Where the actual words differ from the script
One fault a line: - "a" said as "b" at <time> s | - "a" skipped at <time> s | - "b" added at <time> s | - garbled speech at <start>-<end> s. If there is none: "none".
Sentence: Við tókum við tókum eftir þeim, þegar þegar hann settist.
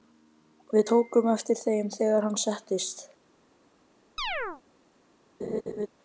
- "við tókum" skipped at 1.3 s
- "þegar" skipped at 2.3 s